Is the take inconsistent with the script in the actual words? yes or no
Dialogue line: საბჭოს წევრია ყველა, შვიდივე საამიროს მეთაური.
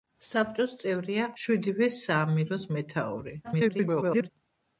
yes